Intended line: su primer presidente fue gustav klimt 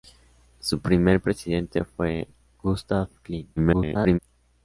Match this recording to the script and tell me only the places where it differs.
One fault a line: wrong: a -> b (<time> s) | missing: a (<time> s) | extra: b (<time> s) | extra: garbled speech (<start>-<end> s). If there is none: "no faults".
extra: garbled speech (3.6-4.2 s)